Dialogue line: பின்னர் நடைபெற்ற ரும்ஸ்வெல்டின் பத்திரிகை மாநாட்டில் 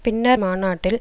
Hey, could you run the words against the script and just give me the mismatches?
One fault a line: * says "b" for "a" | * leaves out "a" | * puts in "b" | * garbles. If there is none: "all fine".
* leaves out "நடைபெற்ற ரும்ஸ்வெல்டின் பத்திரிகை"